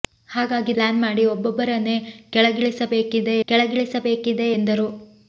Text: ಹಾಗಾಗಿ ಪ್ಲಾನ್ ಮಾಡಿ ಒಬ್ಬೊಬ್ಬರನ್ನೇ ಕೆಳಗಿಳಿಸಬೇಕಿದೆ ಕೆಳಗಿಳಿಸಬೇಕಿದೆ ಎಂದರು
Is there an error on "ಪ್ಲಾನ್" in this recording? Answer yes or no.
no